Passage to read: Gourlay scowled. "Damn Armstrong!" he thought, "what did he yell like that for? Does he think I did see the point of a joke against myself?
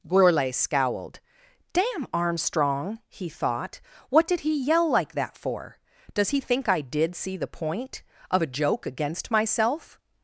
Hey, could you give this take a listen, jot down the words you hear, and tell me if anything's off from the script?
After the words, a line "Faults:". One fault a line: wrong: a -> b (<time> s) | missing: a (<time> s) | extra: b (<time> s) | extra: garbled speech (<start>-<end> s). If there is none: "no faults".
Gourlay scowled. "Damn Armstrong!" he thought, "what did he yell like that for? Does he think I did see the point of a joke against myself?
Faults:
no faults